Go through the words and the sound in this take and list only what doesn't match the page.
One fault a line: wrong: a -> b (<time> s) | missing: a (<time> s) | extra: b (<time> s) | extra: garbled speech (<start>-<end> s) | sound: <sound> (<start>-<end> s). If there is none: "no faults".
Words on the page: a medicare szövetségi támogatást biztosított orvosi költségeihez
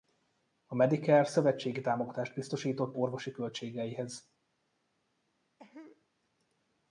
sound: cough (5.6-6.1 s)